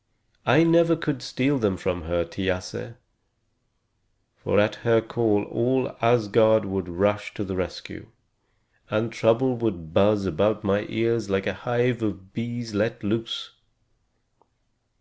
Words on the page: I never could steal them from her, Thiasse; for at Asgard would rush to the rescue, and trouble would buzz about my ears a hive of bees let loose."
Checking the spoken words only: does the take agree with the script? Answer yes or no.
no